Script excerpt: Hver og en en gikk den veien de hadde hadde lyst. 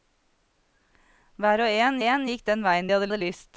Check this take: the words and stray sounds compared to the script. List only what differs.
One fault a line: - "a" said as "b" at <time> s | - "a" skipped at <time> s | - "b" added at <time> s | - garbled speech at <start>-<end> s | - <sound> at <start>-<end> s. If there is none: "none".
none